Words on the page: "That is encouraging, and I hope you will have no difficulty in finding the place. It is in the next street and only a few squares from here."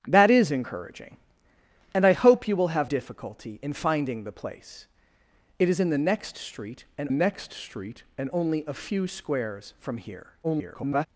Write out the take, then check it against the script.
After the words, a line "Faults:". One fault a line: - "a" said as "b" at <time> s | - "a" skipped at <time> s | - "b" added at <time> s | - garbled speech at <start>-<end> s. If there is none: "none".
"That is encouraging, and I hope you will have difficulty in finding the place. It is in the next street and next street and only a few squares from here." [garbled]
Faults:
- "no" skipped at 2.9 s
- "next street and" added at 7.1 s
- garbled speech at 10.4-11.1 s